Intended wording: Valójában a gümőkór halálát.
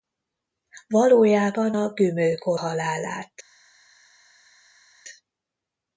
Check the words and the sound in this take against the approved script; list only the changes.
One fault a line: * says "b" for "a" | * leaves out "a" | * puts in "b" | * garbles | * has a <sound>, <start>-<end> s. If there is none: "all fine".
all fine